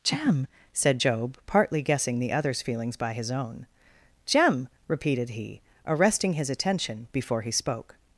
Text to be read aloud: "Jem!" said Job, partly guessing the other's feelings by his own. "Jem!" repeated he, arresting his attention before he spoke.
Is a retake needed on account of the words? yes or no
no